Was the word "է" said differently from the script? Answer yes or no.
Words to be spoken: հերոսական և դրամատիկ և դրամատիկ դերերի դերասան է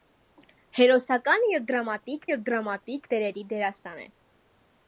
no